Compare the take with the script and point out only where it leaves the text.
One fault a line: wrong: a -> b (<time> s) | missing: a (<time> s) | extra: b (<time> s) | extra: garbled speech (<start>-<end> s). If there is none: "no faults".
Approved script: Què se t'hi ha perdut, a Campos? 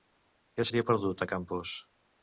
missing: se (0.7 s)